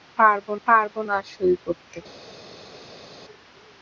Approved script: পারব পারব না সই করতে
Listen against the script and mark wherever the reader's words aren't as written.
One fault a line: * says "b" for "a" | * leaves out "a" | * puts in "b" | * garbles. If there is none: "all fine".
all fine